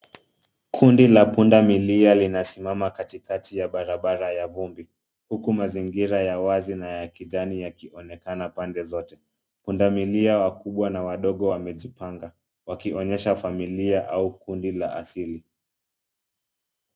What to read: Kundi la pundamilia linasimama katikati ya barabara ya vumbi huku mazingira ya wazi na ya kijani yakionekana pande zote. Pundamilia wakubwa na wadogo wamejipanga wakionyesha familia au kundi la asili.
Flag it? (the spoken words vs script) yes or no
no